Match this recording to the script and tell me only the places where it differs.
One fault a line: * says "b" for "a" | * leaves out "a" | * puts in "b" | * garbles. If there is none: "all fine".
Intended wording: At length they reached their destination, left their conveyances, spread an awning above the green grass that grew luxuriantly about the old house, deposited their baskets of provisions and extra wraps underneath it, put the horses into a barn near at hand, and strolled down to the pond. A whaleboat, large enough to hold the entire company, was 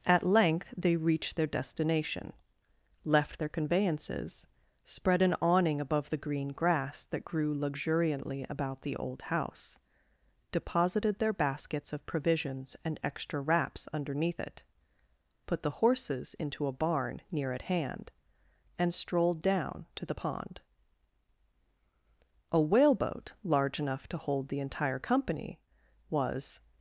all fine